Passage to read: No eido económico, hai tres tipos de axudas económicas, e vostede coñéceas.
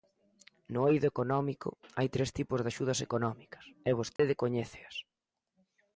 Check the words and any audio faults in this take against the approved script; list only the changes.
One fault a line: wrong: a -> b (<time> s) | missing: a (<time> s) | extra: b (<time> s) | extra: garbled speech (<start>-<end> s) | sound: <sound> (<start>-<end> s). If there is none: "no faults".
sound: dropout (4.2-4.2 s)